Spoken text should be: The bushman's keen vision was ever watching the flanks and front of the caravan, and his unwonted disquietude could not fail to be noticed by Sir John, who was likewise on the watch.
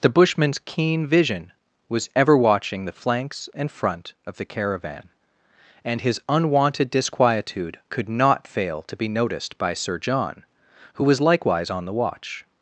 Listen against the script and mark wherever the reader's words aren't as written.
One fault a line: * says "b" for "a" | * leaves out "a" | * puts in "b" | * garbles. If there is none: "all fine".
all fine